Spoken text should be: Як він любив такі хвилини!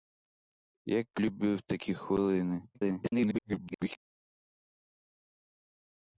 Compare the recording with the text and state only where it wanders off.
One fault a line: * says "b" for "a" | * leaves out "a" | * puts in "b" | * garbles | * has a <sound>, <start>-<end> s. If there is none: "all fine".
* leaves out "він"
* garbles